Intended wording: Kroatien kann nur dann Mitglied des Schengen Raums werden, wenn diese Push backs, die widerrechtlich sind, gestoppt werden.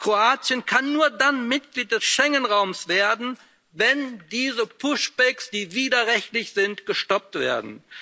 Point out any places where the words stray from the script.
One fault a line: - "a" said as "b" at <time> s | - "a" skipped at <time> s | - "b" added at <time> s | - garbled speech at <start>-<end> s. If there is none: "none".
none